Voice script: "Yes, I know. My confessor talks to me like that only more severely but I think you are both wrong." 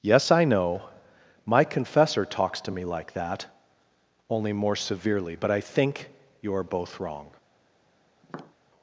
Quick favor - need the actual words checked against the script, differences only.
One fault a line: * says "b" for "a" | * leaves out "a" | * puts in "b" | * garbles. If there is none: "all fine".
all fine